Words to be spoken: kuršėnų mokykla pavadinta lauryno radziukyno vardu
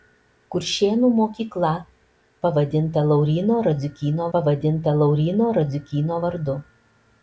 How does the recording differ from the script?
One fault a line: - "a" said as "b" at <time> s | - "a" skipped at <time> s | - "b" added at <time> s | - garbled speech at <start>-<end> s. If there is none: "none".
- "pavadinta lauryno radziukyno" added at 4.4 s